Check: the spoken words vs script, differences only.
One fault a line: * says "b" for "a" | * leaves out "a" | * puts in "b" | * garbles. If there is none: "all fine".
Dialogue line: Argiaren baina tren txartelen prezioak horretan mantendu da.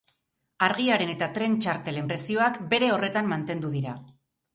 * says "eta" for "baina"
* puts in "bere"
* says "dira" for "da"